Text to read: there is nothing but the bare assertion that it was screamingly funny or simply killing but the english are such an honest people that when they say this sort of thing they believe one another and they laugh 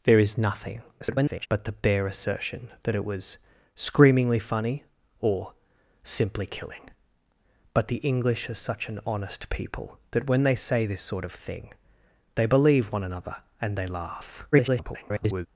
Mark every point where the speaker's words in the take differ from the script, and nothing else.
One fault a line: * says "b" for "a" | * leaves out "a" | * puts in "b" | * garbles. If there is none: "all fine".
* garbles
* garbles